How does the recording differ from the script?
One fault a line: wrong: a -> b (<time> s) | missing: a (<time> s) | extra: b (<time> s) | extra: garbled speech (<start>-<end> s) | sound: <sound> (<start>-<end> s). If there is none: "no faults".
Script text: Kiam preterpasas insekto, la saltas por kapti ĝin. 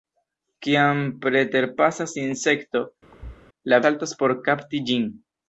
sound: thud (3.1-3.4 s)